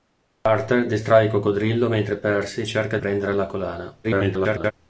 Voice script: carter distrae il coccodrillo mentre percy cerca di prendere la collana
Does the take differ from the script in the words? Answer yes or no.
yes